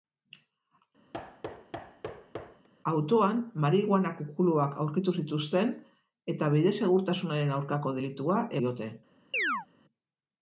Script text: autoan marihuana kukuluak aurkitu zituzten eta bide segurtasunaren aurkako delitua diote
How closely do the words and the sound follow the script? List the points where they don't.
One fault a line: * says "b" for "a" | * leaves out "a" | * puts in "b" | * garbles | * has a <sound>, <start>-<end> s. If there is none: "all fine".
* has a thud, 1.1-2.7 s
* has a chirp, 9.3-9.7 s